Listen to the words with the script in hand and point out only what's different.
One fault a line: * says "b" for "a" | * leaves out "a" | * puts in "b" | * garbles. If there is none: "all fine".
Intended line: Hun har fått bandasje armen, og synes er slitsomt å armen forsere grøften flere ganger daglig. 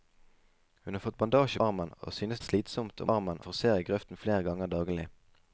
all fine